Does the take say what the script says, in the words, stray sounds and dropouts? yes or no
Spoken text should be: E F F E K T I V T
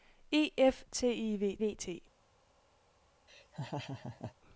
no